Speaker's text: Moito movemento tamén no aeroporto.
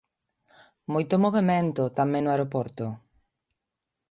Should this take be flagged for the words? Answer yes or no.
no